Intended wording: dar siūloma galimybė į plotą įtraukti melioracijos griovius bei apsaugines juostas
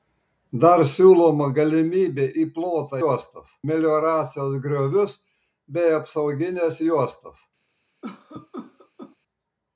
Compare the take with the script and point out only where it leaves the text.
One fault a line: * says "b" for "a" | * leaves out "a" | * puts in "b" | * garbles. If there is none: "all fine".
* says "juostas" for "įtraukti"